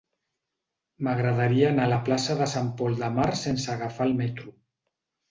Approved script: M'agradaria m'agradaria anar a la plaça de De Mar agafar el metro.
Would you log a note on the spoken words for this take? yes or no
yes